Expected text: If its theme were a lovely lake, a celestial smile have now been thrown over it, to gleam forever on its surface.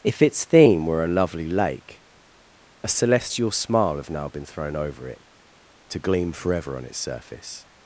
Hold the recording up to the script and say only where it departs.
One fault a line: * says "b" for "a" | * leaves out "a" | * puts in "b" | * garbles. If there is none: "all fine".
all fine